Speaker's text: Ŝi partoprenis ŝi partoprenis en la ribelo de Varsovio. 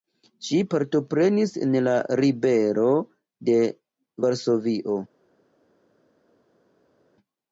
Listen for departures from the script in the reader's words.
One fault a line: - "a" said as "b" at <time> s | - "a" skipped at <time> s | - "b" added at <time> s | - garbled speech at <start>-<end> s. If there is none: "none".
- "ŝi partoprenis" skipped at 1.5 s